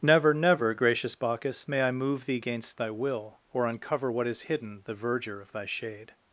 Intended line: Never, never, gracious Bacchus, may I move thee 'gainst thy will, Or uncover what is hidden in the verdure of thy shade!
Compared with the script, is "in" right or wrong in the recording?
wrong